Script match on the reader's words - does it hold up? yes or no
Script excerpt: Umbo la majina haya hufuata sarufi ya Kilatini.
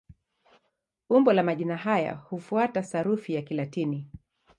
yes